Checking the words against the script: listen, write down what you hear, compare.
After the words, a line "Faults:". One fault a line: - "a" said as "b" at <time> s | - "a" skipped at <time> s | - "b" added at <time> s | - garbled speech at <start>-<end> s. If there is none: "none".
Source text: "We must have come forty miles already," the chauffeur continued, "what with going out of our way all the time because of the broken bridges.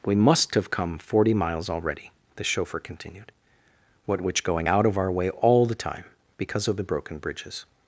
"We must have come forty miles already," the chauffeur continued, "what which going out of our way all the time because of the broken bridges.
Faults:
- "with" said as "which" at 4.2 s